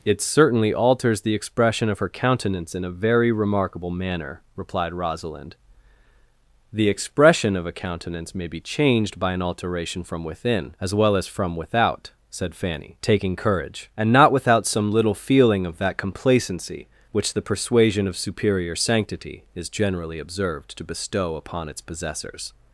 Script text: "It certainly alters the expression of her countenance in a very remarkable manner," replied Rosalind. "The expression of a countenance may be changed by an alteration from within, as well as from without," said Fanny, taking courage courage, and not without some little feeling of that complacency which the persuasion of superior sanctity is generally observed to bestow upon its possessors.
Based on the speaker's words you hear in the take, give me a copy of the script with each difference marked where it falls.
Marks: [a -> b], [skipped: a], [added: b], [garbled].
"It certainly alters the expression of her countenance in a very remarkable manner," replied Rosalind. "The expression of a countenance may be changed by an alteration from within, as well as from without," said Fanny, taking courage [skipped: courage,] and not without some little feeling of that complacency which the persuasion of superior sanctity is generally observed to bestow upon its possessors.